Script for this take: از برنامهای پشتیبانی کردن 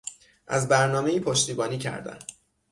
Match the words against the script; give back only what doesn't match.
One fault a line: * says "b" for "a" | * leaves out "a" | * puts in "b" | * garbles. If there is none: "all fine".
all fine